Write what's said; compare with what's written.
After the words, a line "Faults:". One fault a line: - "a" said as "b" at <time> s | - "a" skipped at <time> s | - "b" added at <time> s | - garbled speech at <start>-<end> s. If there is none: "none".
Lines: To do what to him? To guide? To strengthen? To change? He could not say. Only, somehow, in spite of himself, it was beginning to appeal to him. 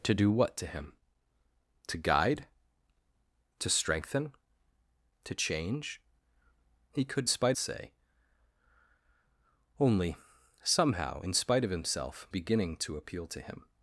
To do what to him? To guide? To strengthen? To change? He could spite say. Only, somehow, in spite of himself, beginning to appeal to him.
Faults:
- "not" said as "spite" at 7.3 s
- "it was" skipped at 12.3 s